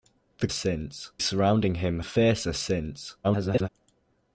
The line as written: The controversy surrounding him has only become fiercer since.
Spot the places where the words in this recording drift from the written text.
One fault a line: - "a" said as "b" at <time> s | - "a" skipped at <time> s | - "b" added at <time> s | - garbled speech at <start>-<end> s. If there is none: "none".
- "controversy" said as "since" at 0.5 s
- "has only become" skipped at 2.0 s
- garbled speech at 3.2-3.7 s